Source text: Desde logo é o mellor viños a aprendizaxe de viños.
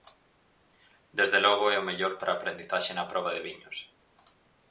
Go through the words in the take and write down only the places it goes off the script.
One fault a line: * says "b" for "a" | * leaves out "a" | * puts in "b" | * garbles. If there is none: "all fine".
* says "para" for "viños"
* puts in "na proba"